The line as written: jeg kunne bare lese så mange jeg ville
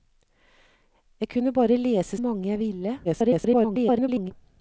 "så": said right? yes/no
no